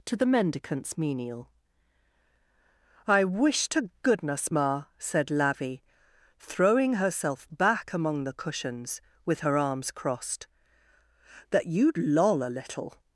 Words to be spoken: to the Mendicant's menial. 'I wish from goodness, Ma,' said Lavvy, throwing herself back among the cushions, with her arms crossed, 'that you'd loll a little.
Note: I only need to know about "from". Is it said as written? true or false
false